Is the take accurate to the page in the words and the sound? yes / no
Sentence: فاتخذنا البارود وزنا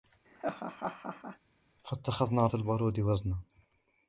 no